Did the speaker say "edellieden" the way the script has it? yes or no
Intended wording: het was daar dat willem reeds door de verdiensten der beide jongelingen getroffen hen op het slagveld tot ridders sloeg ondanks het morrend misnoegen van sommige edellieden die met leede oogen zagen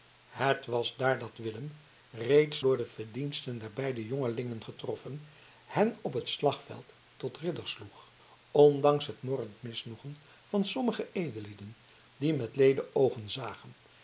yes